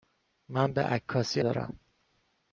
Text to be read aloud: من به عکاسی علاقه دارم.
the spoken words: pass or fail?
fail